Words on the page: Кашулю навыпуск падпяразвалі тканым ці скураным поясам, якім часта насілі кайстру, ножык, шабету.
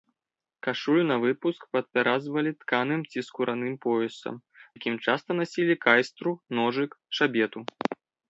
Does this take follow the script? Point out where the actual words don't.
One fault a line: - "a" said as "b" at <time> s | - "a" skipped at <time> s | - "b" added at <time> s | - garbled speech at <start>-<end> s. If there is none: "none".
none